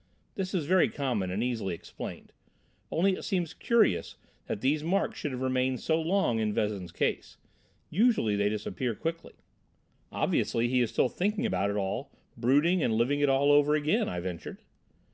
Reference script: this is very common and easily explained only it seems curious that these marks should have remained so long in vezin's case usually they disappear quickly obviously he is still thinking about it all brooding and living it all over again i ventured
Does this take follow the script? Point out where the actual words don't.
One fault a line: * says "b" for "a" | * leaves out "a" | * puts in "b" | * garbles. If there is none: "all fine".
all fine